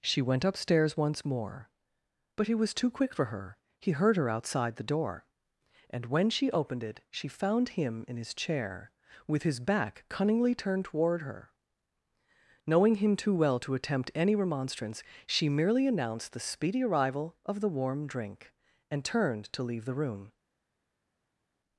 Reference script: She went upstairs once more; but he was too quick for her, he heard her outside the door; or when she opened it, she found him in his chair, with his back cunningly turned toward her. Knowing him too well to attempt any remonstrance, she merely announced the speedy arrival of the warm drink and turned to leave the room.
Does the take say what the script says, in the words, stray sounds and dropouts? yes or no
no